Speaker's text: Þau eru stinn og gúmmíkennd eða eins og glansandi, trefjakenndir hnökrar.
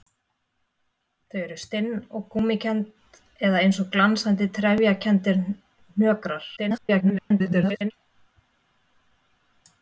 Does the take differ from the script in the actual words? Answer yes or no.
yes